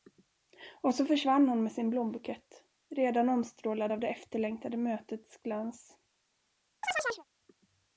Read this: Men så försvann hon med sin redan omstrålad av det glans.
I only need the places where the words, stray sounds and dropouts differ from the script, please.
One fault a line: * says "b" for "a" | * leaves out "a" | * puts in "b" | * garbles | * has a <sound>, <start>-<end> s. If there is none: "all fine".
* says "Och" for "Men"
* puts in "blombukett"
* puts in "efterlängtade mötets"
* has a chirp, 6.8-7.2 s